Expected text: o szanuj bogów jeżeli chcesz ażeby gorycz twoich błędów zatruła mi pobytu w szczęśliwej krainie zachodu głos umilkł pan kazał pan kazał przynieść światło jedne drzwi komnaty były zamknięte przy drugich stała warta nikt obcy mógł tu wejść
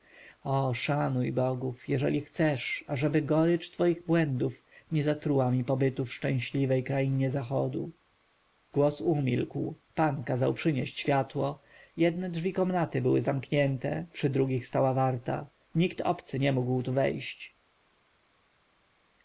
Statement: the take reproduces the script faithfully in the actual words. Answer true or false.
false